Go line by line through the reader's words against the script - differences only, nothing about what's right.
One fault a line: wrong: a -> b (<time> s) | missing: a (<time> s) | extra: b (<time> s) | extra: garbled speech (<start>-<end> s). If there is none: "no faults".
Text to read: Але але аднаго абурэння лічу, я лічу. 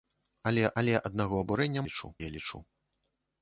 no faults